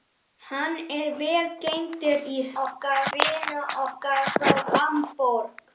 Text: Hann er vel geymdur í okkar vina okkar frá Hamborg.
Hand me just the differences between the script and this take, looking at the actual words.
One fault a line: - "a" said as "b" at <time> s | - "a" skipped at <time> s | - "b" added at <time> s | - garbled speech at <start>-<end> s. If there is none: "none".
none